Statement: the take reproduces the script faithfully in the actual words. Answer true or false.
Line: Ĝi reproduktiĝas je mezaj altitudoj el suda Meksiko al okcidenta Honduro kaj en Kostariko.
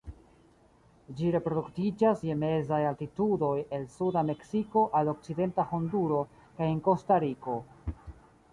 true